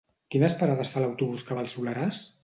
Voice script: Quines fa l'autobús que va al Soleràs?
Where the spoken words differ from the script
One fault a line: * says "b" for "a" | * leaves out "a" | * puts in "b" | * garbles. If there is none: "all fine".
* puts in "parades"